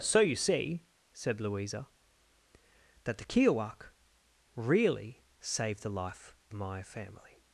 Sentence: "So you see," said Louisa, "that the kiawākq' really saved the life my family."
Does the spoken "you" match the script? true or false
true